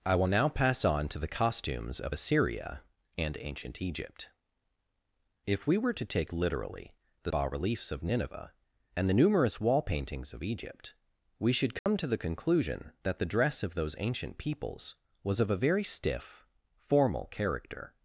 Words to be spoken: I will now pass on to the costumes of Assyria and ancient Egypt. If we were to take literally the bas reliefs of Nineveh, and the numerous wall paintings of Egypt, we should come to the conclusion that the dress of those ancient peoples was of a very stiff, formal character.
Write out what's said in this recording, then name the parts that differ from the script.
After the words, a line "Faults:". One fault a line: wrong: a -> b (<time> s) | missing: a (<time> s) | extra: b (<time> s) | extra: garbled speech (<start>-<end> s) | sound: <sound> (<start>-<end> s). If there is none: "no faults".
I will now pass on to the costumes of Assyria and ancient Egypt. If we were to take literally the bas reliefs of Nineveh, and the numerous wall paintings of Egypt, we should come to the conclusion that the dress of those ancient peoples was of a very stiff, formal character.
Faults:
sound: dropout (11.8-11.9 s)